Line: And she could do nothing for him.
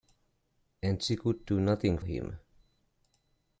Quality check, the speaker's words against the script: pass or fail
fail